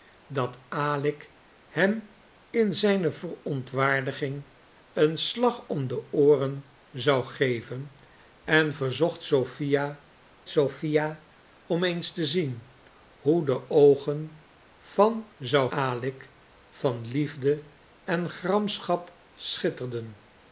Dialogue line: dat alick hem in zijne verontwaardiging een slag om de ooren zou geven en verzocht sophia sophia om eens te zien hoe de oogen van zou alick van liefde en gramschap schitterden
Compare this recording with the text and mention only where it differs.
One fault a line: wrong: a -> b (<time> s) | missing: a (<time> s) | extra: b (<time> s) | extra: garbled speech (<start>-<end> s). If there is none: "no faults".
no faults